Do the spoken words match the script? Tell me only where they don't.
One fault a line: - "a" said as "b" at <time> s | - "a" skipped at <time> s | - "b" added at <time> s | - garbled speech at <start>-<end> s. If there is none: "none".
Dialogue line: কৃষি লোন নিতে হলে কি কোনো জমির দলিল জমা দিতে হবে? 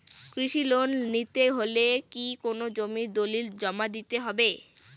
none